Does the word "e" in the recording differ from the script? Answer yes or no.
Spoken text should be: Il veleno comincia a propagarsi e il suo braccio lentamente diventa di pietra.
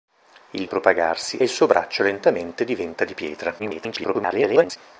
yes